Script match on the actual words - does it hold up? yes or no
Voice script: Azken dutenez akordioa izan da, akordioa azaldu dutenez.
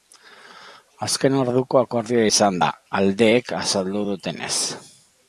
no